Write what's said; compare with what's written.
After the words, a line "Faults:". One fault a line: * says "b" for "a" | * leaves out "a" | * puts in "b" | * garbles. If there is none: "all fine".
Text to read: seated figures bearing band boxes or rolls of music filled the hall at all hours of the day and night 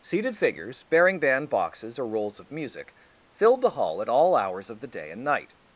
seated figures bearing band boxes or rolls of music filled the hall at all hours of the day and night
Faults:
all fine